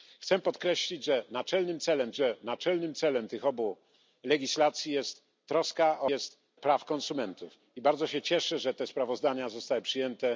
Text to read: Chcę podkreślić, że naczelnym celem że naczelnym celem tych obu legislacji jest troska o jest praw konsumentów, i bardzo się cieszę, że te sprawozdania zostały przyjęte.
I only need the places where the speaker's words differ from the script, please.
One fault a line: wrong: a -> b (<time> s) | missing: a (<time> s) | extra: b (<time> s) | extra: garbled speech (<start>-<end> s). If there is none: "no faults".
no faults